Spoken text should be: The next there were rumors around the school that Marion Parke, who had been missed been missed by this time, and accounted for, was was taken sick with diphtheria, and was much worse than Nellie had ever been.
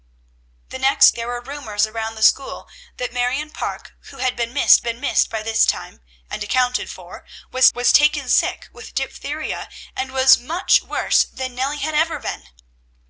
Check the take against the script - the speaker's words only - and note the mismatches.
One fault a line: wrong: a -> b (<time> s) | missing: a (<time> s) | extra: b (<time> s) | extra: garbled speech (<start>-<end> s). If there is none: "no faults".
no faults